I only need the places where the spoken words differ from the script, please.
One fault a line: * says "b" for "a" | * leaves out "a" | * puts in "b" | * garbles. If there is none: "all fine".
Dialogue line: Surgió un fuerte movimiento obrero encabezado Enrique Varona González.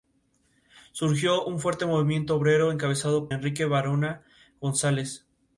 all fine